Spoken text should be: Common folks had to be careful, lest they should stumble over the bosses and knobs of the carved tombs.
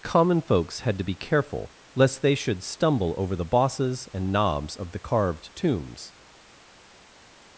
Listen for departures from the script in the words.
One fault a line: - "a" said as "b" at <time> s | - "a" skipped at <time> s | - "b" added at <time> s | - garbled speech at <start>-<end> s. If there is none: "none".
none